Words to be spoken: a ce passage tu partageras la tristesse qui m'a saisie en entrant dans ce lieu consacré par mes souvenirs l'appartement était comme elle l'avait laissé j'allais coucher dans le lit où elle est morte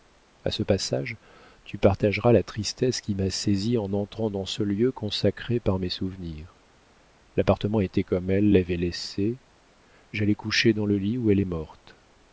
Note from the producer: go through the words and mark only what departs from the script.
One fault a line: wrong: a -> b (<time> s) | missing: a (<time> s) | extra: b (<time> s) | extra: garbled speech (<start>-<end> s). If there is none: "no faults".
no faults